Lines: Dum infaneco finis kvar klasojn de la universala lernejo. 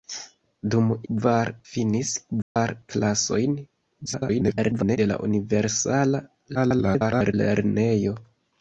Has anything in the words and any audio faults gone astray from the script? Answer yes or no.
yes